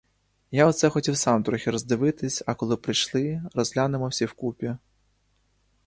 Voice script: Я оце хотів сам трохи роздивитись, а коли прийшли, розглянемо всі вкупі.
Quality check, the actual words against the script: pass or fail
pass